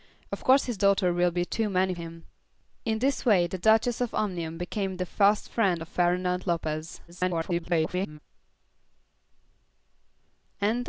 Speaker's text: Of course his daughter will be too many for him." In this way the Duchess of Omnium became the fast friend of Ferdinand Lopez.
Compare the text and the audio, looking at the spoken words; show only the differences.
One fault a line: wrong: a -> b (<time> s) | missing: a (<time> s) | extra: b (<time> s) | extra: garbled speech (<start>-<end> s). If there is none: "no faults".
missing: for (1.9 s)
extra: garbled speech (7.1-8.2 s)